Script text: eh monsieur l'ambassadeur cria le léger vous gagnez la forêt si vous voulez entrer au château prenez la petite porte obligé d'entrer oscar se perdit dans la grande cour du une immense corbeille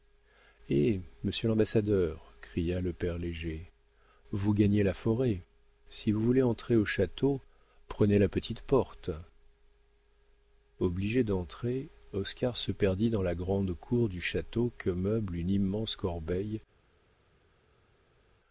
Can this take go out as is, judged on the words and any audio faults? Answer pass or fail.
fail